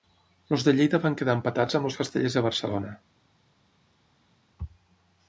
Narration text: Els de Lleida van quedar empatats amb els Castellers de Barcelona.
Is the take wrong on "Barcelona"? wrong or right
right